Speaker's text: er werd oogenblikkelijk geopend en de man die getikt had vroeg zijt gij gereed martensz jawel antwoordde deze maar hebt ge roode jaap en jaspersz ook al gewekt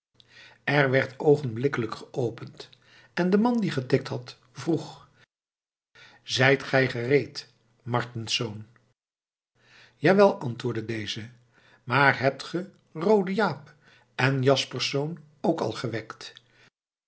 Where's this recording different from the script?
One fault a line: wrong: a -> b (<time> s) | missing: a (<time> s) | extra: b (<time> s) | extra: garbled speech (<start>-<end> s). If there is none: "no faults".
no faults